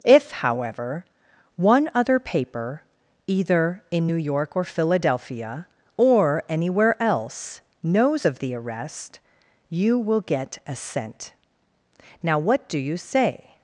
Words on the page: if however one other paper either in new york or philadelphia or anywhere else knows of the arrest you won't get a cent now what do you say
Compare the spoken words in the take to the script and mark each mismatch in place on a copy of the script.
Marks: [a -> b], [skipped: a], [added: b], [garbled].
if however one other paper either in new york or philadelphia or anywhere else knows of the arrest you [won't -> will] get a cent now what do you say